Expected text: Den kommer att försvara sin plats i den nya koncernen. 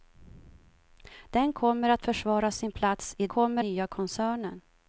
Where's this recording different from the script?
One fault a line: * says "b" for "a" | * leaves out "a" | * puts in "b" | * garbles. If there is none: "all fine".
* says "kommer" for "den"